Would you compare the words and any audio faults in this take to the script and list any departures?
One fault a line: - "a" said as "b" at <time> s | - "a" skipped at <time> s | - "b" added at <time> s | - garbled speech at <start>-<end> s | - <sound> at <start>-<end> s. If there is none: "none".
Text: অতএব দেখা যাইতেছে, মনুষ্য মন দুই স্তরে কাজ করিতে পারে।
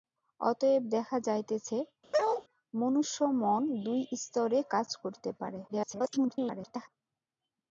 - bark at 2.1-2.4 s
- garbled speech at 5.7-6.9 s